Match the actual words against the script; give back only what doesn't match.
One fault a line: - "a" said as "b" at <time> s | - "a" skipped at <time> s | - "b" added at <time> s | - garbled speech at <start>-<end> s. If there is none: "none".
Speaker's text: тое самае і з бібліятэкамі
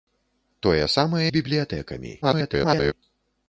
- "і" skipped at 1.3 s
- garbled speech at 2.2-2.9 s